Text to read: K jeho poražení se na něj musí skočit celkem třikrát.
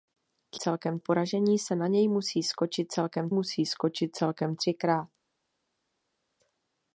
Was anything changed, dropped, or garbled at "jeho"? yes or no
yes